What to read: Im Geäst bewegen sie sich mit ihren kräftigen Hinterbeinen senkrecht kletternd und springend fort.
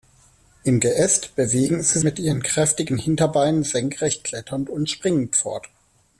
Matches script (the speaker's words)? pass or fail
fail